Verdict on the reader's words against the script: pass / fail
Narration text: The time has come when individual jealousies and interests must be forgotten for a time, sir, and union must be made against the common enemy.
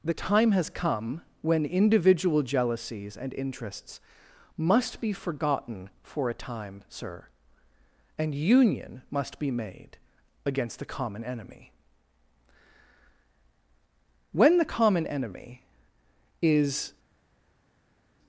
fail